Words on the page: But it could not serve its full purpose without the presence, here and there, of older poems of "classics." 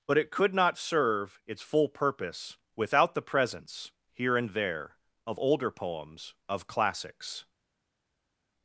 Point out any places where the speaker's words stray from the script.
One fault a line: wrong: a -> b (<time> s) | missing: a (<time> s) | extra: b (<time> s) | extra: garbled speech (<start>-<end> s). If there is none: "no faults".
no faults